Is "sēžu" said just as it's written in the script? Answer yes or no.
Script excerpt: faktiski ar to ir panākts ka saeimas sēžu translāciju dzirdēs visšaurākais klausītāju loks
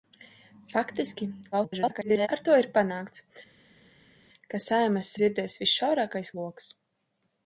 no